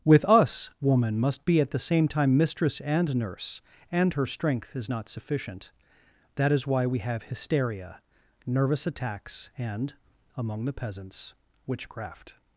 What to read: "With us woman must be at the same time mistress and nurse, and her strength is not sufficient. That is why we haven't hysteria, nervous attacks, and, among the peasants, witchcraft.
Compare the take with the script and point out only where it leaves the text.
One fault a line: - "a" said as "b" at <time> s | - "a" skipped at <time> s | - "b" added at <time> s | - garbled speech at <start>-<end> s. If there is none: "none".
- "haven't" said as "have" at 7.0 s